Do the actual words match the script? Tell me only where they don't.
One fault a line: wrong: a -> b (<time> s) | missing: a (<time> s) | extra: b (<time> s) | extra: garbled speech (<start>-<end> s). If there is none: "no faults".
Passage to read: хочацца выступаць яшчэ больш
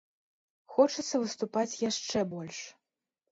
no faults